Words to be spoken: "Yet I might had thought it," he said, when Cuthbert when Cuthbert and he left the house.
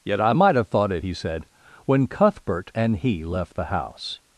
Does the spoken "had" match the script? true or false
false